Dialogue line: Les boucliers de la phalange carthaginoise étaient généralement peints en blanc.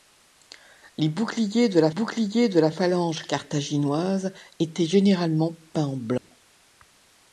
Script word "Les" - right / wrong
right